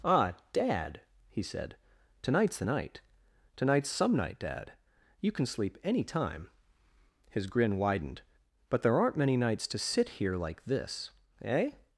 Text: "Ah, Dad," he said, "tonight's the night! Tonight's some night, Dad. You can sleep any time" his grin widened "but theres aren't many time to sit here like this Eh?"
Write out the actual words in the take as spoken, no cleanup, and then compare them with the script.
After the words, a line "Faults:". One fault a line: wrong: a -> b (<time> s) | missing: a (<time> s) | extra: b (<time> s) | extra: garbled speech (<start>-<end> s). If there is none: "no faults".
"Ah, Dad," he said, "tonight's the night! Tonight's some night, Dad. You can sleep any time" his grin widened "but there aren't many nights to sit here like this Eh?"
Faults:
wrong: theres -> there (8.8 s)
wrong: time -> nights (9.4 s)